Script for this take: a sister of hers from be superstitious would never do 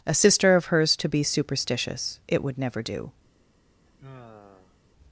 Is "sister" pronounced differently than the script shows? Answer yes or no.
no